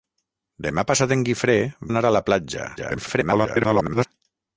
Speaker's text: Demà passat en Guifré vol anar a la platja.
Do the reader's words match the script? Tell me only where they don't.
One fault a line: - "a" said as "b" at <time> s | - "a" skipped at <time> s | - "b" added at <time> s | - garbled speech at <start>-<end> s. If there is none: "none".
- "vol" skipped at 1.6 s
- garbled speech at 2.8-4.1 s